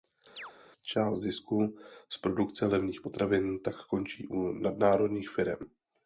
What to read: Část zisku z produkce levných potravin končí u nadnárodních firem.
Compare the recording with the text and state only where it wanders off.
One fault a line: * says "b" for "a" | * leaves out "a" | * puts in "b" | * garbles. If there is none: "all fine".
* puts in "tak"